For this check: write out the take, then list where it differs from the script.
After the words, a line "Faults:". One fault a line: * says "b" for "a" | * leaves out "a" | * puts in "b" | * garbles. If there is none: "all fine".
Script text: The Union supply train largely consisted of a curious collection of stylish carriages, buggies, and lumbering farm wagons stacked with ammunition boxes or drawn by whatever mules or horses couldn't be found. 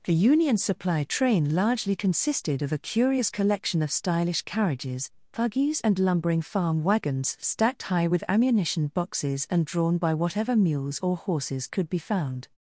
The Union supply train largely consisted of a curious collection of stylish carriages, buggies, and lumbering farm wagons stacked high with ammunition boxes and drawn by whatever mules or horses could be found.
Faults:
* puts in "high"
* says "and" for "or"
* says "could" for "couldn't"